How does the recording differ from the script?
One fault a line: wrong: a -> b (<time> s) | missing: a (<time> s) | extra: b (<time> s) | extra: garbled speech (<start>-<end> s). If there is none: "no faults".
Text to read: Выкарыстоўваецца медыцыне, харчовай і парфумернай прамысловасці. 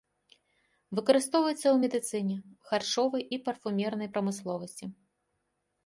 extra: ў (1.6 s)